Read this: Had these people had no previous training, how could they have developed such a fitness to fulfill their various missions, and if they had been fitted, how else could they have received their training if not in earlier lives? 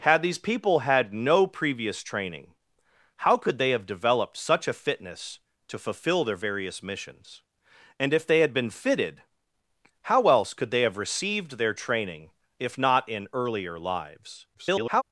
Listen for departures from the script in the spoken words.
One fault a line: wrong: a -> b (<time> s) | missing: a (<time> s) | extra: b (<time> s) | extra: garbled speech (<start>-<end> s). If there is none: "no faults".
extra: garbled speech (14.5-15.0 s)